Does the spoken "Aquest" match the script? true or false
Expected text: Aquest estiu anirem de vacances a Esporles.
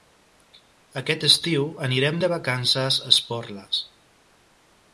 true